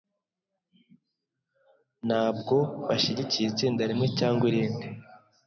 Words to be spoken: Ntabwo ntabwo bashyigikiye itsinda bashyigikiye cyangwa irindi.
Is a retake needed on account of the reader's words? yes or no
yes